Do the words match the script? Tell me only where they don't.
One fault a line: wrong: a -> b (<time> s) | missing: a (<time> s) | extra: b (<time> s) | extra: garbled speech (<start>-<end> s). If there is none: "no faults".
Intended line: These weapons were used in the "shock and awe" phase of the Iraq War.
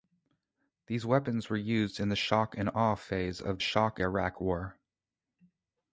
wrong: the -> shock (3.6 s)